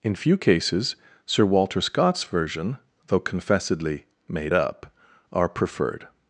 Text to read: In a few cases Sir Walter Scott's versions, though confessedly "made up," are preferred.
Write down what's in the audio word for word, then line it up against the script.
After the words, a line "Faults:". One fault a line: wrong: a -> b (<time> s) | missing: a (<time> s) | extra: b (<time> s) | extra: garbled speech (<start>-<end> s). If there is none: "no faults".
In few cases Sir Walter Scott's version, though confessedly "made up," are preferred.
Faults:
missing: a (0.1 s)
wrong: versions -> version (2.2 s)